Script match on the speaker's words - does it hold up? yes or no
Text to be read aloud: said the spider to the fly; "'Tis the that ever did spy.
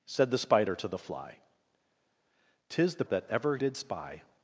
yes